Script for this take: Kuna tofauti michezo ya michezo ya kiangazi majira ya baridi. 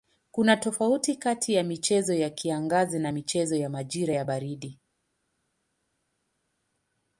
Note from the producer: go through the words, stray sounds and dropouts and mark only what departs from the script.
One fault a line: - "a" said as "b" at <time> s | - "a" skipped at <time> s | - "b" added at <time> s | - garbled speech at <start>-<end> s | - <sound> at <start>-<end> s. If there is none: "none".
- "michezo" said as "kati" at 1.1 s
- "na michezo ya" added at 3.0 s